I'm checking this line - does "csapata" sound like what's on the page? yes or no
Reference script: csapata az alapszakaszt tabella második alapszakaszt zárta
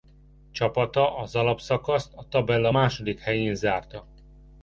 yes